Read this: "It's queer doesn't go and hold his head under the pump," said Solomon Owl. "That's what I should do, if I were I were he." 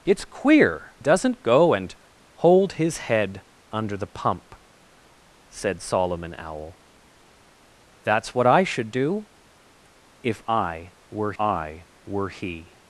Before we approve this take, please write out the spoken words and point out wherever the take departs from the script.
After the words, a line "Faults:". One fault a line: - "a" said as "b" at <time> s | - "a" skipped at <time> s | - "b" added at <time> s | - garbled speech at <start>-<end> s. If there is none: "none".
"It's queer doesn't go and hold his head under the pump," said Solomon Owl. "That's what I should do, if I were I were he."
Faults:
none